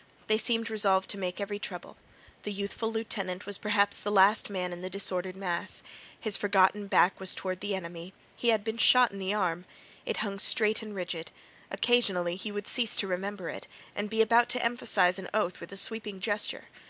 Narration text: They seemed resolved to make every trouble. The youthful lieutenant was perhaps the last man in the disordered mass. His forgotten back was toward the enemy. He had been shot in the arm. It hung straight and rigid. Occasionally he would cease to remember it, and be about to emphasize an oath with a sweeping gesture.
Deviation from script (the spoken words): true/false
false